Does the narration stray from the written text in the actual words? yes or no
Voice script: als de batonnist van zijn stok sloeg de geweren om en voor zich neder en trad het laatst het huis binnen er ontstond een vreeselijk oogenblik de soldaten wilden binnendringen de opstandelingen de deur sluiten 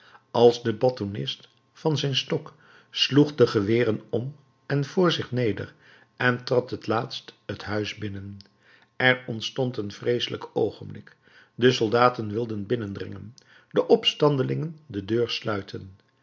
no